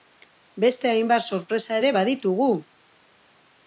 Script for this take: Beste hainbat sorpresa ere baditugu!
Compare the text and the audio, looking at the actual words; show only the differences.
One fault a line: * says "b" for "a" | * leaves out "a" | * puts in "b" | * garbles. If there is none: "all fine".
all fine